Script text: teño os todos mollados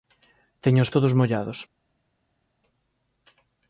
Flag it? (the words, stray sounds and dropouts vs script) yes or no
no